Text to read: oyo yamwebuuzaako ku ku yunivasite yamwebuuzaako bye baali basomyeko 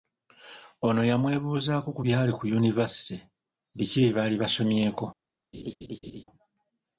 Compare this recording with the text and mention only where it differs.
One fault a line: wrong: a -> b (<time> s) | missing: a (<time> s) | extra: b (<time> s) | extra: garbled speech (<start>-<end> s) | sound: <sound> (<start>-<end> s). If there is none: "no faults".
wrong: oyo -> ono (0.9 s)
extra: byali (2.1 s)
wrong: yamwebuuzaako -> biki (3.8 s)
sound: laugh (5.5-6.2 s)